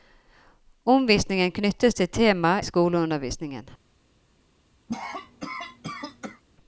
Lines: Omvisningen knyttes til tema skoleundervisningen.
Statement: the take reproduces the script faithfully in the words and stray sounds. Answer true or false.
false